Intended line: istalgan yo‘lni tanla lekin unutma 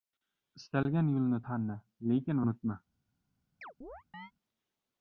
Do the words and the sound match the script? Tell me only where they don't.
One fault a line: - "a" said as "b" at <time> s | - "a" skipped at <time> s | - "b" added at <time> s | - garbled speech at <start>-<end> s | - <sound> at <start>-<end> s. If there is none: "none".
- chirp at 3.6-4.3 s